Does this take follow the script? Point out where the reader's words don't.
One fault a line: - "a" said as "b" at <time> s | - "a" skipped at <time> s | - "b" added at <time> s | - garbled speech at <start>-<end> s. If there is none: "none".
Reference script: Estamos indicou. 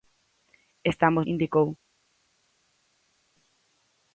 none